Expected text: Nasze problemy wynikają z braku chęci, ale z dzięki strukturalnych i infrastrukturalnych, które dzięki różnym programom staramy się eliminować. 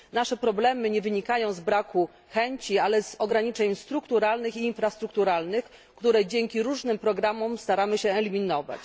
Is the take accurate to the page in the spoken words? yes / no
no